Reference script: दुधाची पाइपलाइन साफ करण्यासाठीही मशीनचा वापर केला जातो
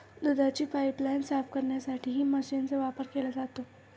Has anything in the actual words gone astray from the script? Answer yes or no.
no